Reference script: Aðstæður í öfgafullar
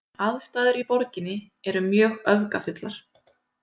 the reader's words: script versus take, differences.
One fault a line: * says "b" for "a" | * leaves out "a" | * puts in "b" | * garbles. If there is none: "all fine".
* puts in "borginni eru mjög"